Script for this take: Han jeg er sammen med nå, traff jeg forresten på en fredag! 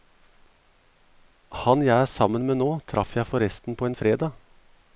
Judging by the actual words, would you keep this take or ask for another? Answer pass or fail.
pass